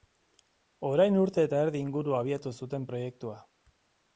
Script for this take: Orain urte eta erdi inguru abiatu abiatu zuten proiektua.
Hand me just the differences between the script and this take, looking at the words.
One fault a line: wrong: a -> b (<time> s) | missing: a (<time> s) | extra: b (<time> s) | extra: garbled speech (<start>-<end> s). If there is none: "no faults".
missing: abiatu (2.5 s)